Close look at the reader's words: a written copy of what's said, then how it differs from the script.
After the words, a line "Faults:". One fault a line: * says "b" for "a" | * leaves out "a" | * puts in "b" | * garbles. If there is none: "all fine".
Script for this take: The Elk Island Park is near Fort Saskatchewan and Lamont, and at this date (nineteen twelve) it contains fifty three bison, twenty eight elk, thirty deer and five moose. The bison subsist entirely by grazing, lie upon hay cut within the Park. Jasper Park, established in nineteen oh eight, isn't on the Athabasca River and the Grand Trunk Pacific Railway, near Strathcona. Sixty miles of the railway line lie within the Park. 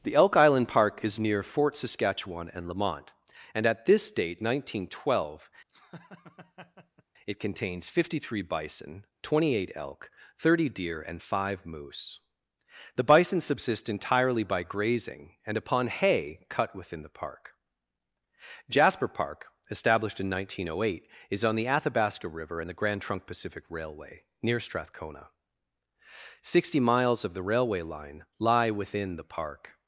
The Elk Island Park is near Fort Saskatchewan and Lamont, and at this date (nineteen twelve) it contains fifty three bison, twenty eight elk, thirty deer and five moose. The bison subsist entirely by grazing, and upon hay cut within the Park. Jasper Park, established in nineteen oh eight, is on the Athabasca River and the Grand Trunk Pacific Railway, near Strathcona. Sixty miles of the railway line lie within the Park.
Faults:
* says "and" for "lie"
* says "is" for "isn't"